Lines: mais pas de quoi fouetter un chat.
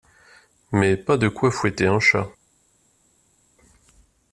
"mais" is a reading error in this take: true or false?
false